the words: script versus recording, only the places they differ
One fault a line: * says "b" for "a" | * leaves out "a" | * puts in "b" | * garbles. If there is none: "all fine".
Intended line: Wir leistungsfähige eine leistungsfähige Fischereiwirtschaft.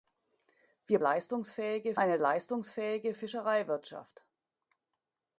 all fine